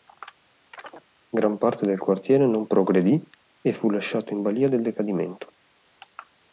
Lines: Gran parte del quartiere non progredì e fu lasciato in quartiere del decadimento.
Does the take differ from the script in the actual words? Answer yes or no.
yes